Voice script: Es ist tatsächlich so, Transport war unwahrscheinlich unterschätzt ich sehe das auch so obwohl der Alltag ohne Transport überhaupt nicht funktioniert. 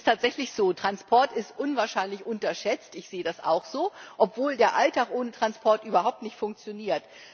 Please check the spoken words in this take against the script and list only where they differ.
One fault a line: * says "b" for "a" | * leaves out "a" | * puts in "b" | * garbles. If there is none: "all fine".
* says "ist" for "war"